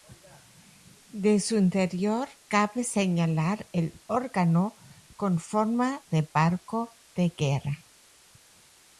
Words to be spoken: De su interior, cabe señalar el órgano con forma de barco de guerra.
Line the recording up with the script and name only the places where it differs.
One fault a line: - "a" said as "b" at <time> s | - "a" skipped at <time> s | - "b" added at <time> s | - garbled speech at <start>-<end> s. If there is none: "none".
none